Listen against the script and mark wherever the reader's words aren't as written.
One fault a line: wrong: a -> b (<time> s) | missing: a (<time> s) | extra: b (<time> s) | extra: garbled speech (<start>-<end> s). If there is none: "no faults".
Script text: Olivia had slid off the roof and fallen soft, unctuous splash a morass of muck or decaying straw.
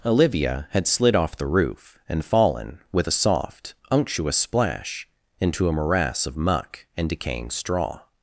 extra: with a (2.9 s)
extra: into (5.4 s)
wrong: or -> and (7.0 s)